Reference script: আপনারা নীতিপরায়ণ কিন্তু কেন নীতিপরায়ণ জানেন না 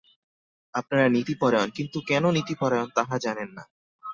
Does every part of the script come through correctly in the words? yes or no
no